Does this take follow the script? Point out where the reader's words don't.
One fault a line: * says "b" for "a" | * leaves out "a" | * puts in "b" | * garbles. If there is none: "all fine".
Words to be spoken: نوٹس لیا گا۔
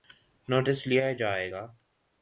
* puts in "جائے"